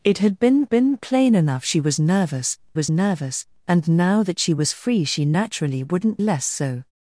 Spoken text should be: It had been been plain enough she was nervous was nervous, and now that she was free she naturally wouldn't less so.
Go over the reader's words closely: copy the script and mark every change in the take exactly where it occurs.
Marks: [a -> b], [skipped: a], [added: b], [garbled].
It had been been plain enough she was nervous was nervous, and now that she was free she naturally wouldn't less so.